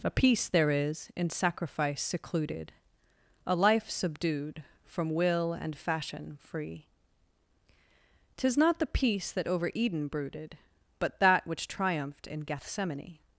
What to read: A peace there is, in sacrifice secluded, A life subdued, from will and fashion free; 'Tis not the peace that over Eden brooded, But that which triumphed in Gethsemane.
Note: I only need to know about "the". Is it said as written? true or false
true